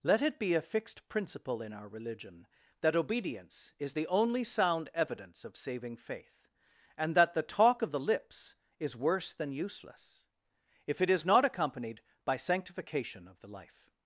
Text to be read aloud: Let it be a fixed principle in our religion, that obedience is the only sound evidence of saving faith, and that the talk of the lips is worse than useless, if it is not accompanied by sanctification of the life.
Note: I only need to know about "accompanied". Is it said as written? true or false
true